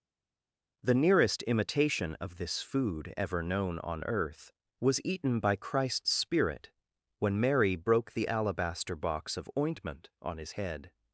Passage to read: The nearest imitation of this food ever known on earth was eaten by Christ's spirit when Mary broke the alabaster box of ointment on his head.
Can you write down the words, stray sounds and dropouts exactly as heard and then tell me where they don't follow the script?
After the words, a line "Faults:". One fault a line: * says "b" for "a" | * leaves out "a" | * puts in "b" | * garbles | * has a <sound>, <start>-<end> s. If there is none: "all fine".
The nearest imitation of this food ever known on earth was eaten by Christ's spirit when Mary broke the alabaster box of ointment on his head.
Faults:
all fine